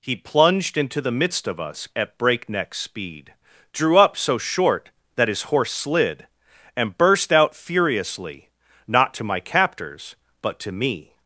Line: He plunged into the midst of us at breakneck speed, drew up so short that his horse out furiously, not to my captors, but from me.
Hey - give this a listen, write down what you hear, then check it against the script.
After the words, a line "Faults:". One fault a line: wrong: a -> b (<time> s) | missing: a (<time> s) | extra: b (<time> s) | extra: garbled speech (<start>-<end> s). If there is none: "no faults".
He plunged into the midst of us at breakneck speed, drew up so short that his horse slid, and burst out furiously, not to my captors, but to me.
Faults:
extra: slid and burst (5.7 s)
wrong: from -> to (10.6 s)